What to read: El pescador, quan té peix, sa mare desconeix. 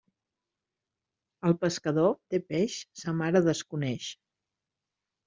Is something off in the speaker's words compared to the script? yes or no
yes